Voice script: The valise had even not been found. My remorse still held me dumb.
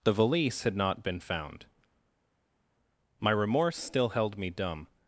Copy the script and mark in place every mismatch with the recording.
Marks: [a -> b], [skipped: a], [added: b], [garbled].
The valise had [skipped: even] not been found. My remorse still held me dumb.